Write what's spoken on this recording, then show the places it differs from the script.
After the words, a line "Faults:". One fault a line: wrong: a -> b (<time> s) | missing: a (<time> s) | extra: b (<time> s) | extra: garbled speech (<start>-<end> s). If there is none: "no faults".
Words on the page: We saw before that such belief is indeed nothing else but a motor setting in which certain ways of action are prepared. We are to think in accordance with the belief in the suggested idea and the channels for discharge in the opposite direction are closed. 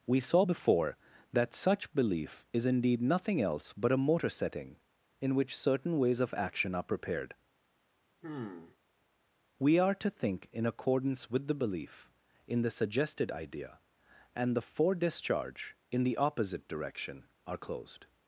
We saw before that such belief is indeed nothing else but a motor setting in which certain ways of action are prepared. We are to think in accordance with the belief in the suggested idea and the for discharge in the opposite direction are closed.
Faults:
missing: channels (14.6 s)